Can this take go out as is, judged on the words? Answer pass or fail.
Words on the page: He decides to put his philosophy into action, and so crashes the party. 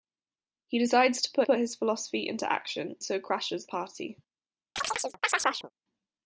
fail